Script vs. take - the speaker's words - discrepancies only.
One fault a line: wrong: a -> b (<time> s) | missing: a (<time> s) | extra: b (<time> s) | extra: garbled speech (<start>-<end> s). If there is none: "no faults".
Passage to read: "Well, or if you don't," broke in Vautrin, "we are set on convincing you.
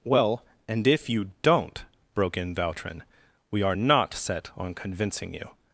wrong: or -> and (0.7 s)
extra: not (3.7 s)